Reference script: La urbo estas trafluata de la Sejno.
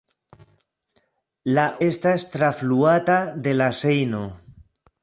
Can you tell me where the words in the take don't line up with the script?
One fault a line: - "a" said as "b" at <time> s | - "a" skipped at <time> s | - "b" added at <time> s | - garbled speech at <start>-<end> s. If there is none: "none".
- "urbo" skipped at 1.6 s